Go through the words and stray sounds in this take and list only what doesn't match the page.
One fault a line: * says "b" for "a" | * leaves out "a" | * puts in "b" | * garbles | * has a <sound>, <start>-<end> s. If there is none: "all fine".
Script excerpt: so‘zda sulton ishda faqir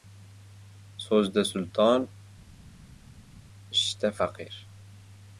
all fine